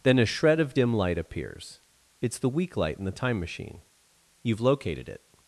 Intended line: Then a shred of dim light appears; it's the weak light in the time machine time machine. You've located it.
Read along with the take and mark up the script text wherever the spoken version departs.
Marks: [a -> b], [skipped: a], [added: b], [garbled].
Then a shred of dim light appears; it's the weak light in the time machine [skipped: time machine.] You've located it.